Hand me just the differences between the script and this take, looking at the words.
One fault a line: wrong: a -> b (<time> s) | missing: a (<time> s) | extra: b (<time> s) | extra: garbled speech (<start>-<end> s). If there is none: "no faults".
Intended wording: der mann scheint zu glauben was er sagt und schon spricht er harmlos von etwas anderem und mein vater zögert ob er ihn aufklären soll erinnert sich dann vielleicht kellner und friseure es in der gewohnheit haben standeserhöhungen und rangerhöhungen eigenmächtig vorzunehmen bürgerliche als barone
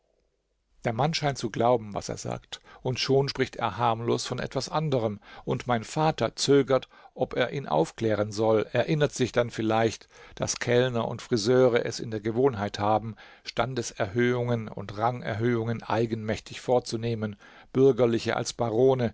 extra: daß (10.3 s)